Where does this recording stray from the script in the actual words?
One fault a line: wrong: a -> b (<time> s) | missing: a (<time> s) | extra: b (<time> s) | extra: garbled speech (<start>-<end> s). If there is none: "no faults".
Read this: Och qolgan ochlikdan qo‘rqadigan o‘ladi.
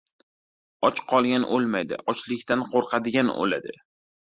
extra: o‘lmaydi (1.6 s)